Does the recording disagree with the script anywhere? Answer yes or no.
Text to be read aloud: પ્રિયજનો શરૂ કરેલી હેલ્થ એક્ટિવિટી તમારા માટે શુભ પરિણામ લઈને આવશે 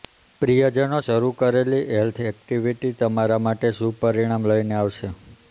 no